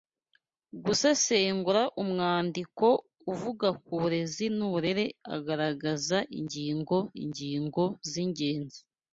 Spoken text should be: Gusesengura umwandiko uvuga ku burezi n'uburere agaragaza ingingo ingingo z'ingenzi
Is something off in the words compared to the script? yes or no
no